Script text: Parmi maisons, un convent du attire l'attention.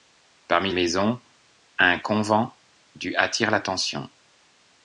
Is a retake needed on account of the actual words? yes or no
no